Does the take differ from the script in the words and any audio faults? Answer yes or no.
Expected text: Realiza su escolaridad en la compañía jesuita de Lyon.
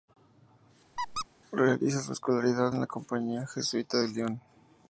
yes